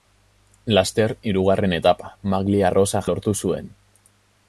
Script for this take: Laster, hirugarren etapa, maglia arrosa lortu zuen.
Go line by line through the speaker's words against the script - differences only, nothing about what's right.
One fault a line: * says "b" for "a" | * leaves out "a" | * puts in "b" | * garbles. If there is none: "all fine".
all fine